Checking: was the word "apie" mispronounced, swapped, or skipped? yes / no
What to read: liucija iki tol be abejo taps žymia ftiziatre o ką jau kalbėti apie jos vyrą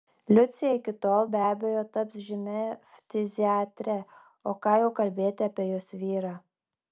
no